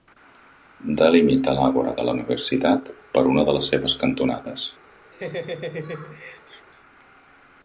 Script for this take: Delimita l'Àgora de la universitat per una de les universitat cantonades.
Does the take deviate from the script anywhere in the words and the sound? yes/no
yes